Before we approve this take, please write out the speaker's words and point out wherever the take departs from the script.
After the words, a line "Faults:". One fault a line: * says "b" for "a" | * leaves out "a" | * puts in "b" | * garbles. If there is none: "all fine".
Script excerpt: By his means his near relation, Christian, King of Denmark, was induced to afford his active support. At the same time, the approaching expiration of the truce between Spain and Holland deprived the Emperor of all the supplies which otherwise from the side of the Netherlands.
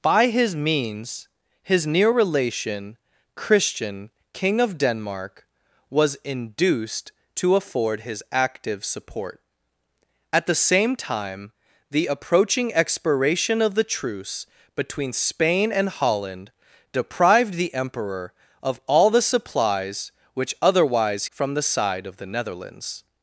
By his means his near relation, Christian, King of Denmark, was induced to afford his active support. At the same time, the approaching expiration of the truce between Spain and Holland deprived the Emperor of all the supplies which otherwise from the side of the Netherlands.
Faults:
all fine